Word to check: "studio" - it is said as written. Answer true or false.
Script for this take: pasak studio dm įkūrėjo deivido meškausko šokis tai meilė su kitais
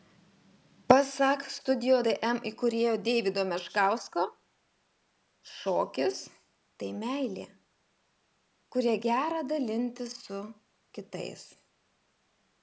true